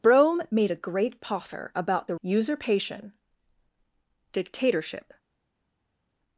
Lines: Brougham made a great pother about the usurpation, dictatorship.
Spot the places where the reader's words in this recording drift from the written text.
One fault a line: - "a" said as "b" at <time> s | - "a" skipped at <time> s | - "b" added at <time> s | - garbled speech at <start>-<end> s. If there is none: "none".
none